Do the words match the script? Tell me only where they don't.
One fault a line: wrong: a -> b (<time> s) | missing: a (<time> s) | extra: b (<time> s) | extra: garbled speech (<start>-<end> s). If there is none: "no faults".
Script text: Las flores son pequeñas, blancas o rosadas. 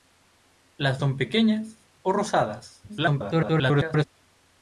missing: flores (1.0 s)
missing: blancas (1.9 s)
extra: garbled speech (2.9-4.0 s)